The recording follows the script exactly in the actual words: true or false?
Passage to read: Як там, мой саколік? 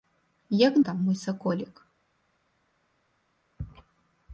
true